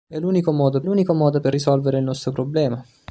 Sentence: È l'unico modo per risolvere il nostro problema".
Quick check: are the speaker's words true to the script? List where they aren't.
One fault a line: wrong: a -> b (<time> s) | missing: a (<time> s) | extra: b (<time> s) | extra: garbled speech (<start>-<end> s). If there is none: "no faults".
extra: l'unico modo (0.8 s)